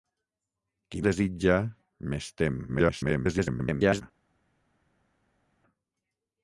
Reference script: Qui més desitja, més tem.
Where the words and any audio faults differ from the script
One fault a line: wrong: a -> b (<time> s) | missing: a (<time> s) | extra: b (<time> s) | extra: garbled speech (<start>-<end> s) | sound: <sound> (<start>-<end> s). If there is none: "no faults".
missing: més (1.0 s)
extra: garbled speech (2.7-4.0 s)